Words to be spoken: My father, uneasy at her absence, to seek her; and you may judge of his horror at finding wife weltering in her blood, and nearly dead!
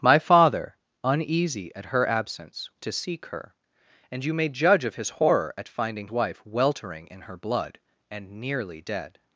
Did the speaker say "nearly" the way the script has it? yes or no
yes